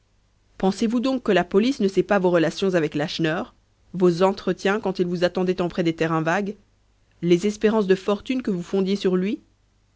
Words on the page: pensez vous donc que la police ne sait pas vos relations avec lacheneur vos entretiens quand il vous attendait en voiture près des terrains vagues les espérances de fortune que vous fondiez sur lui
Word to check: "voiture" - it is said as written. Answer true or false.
false